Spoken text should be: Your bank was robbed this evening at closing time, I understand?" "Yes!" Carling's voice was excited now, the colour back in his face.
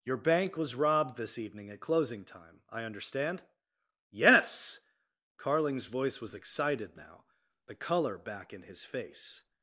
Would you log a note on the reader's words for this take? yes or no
no